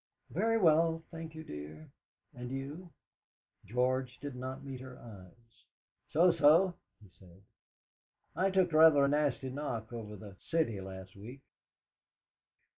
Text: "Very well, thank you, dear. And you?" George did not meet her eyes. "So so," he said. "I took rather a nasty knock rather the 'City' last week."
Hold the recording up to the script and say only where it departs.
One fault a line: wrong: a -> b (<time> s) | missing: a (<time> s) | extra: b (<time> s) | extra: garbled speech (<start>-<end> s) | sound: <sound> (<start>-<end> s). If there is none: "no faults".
wrong: rather -> over (9.9 s)